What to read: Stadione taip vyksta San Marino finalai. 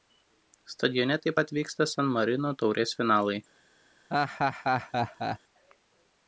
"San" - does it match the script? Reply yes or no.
yes